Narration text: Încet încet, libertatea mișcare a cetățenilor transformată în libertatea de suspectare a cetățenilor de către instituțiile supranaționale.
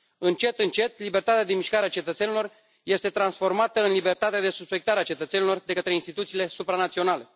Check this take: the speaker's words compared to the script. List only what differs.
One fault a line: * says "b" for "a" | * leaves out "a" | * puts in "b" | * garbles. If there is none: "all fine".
* puts in "de"
* puts in "este"